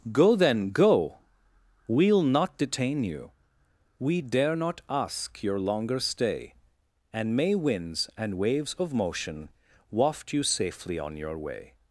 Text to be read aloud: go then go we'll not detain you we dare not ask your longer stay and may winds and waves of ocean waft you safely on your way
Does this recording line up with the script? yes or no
no